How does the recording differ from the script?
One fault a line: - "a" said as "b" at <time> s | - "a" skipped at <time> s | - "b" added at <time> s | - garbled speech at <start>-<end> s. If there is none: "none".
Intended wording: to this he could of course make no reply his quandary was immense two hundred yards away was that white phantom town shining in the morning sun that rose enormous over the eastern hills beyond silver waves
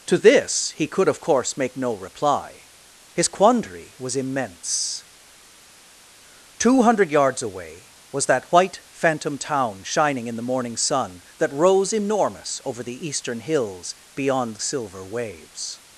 none